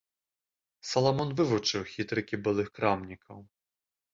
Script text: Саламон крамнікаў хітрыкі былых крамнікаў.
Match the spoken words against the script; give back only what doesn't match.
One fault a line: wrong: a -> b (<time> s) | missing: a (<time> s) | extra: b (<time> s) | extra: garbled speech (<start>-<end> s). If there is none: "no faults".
wrong: крамнікаў -> вывучыў (1.4 s)